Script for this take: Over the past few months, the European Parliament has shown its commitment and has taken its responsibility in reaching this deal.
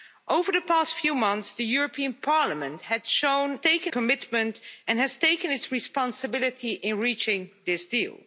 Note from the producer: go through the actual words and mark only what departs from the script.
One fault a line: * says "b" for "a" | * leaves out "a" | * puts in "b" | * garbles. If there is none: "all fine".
* says "taken" for "its"